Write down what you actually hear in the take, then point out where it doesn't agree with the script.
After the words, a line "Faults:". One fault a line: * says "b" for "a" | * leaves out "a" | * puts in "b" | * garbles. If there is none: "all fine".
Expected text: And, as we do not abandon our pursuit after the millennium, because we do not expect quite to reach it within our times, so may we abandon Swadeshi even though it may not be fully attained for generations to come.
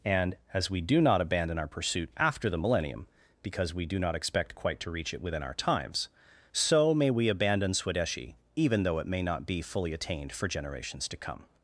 And, as we do not abandon our pursuit after the millennium, because we do not expect quite to reach it within our times, so may we abandon Swadeshi even though it may not be fully attained for generations to come.
Faults:
all fine